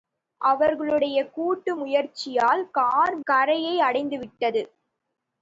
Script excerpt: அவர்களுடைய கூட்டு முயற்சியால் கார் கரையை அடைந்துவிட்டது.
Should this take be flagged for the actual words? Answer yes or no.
no